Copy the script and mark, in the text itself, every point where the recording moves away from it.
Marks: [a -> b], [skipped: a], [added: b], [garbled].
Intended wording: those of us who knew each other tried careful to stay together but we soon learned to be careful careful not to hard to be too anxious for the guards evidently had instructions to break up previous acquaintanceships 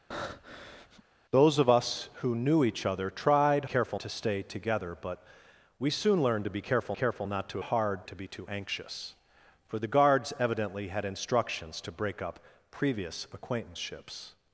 those of us who knew each other tried careful to stay together but we soon learned to be careful careful not to hard to be too anxious for the guards evidently had instructions to break up previous acquaintanceships